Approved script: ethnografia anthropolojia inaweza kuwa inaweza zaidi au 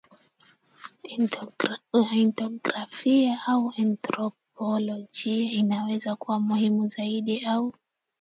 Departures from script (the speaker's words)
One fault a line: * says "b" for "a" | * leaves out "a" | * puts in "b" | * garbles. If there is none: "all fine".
* puts in "au"
* says "muhimu" for "inaweza"